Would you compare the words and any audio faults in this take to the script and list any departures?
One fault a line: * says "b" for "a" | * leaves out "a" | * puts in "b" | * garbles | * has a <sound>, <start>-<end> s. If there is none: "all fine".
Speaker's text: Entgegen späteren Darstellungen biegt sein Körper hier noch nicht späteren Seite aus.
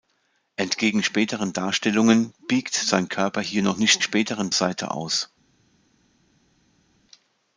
all fine